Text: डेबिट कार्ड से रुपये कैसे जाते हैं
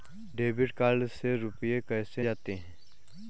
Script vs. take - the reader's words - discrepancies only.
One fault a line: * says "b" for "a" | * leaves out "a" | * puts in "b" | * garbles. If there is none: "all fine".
all fine